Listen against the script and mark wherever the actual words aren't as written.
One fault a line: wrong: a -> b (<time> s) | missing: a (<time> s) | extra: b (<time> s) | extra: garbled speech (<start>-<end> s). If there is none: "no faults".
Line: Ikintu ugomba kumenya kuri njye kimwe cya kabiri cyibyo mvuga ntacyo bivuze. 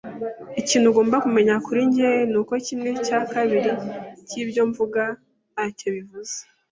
extra: nuko (2.3 s)